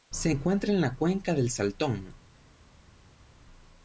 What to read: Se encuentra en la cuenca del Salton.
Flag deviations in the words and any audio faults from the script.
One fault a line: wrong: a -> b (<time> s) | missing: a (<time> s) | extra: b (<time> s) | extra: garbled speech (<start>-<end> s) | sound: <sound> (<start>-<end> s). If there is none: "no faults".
no faults